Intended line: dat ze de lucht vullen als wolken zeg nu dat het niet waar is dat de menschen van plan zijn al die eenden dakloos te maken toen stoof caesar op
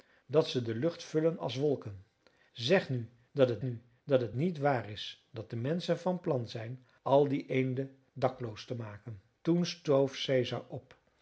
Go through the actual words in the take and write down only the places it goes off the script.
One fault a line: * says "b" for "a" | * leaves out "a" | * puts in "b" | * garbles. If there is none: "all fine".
* puts in "nu dat het"